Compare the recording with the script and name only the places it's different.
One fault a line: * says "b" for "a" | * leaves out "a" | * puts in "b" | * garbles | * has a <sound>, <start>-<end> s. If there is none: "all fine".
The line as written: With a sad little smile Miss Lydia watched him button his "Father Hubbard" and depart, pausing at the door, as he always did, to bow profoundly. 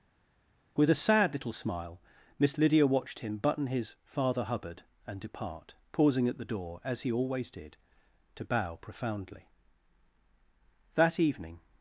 * puts in "That evening"